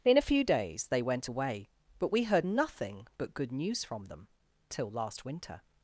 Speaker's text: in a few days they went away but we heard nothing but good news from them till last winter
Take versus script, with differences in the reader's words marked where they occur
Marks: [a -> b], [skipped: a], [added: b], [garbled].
in a few days they went away but we heard nothing but good news from them till last winter